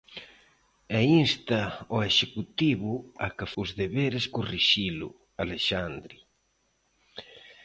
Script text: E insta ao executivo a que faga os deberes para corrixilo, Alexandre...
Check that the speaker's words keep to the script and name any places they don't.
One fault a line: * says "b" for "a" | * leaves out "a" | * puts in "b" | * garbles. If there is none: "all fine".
* leaves out "faga"
* leaves out "para"